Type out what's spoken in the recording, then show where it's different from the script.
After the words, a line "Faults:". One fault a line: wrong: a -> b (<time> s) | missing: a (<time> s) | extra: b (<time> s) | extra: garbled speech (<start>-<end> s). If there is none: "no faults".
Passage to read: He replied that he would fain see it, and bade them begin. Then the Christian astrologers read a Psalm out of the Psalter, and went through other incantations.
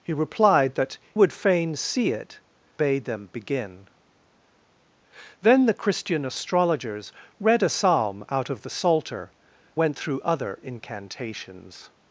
He replied that would fain see it, bade them begin. Then the Christian astrologers read a Psalm out of the Psalter, went through other incantations.
Faults:
missing: he (1.0 s)
missing: and (2.4 s)
missing: and (9.3 s)